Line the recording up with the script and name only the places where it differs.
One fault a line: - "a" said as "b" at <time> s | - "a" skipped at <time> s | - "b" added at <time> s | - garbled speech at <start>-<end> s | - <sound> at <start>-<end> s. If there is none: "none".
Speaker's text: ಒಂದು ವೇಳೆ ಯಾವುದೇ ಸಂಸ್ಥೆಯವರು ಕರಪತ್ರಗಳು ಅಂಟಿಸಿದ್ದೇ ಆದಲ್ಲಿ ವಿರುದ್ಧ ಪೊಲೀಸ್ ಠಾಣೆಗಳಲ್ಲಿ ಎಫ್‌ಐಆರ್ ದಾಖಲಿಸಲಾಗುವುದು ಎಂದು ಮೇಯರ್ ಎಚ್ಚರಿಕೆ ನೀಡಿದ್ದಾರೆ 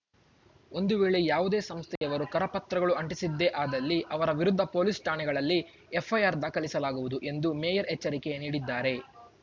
- dropout at 2.0-2.0 s
- "ಅವರ" added at 4.1 s